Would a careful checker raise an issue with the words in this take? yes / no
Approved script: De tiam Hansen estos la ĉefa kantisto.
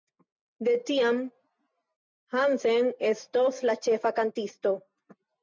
no